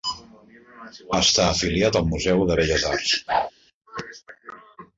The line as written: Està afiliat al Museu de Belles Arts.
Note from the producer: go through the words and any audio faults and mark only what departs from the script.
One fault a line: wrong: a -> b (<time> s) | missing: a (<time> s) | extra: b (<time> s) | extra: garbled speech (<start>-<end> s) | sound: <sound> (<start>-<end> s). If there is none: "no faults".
sound: whoosh (3.3-3.5 s)